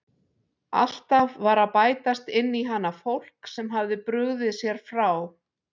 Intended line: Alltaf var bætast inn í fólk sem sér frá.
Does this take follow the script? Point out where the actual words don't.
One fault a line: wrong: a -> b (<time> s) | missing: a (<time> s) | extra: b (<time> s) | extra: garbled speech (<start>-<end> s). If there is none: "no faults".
extra: að (1.6 s)
extra: hana (2.7 s)
extra: hafði brugðið (3.8 s)